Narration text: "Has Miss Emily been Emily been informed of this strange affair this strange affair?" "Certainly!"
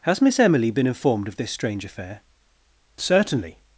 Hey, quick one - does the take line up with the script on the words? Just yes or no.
no